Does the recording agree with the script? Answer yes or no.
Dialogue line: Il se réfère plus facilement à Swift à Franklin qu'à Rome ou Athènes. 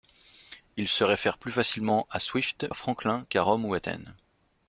yes